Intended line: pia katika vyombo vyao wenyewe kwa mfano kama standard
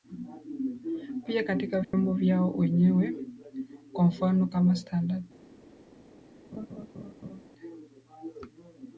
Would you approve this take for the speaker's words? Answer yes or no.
yes